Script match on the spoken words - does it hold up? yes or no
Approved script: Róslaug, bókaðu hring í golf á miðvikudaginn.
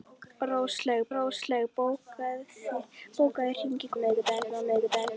no